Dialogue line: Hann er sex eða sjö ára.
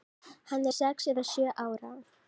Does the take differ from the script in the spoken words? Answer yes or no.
no